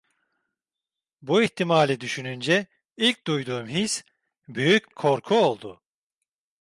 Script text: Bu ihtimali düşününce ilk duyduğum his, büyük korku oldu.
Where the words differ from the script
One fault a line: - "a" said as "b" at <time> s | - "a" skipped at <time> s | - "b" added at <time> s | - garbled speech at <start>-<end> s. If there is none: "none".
none